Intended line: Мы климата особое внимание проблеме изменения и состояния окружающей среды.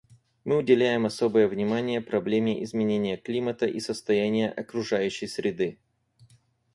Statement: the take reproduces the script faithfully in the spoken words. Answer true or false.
false